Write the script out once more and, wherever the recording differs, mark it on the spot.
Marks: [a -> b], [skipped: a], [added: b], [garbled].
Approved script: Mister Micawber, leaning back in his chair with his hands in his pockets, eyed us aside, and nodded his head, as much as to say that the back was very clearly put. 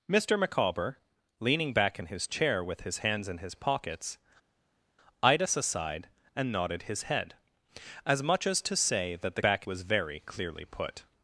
Mister Micawber, leaning back in his chair with his hands in his pockets, eyed us aside, and nodded his head, as much as to say that the back was very clearly put.